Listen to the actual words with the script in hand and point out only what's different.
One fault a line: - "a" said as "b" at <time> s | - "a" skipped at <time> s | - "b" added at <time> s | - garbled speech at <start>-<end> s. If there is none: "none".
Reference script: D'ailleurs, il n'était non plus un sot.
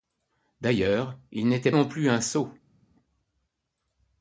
none